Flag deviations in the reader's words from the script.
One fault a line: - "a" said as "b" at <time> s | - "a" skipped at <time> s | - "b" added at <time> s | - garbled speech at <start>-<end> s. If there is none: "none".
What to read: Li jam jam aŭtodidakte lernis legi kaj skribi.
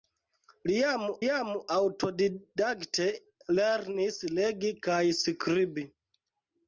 none